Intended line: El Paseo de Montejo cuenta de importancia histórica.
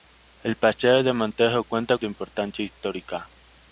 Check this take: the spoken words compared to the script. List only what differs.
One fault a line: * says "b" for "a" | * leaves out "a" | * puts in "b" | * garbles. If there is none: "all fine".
all fine